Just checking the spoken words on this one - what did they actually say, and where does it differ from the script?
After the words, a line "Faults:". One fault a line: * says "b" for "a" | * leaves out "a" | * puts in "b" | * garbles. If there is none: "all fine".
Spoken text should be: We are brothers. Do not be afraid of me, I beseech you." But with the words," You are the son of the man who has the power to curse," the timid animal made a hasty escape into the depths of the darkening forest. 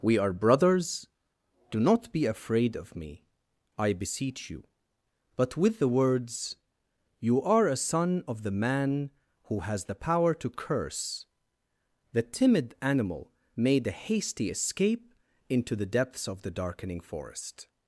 We are brothers. Do not be afraid of me, I beseech you." But with the words," You are a son of the man who has the power to curse," the timid animal made a hasty escape into the depths of the darkening forest.
Faults:
* says "a" for "the"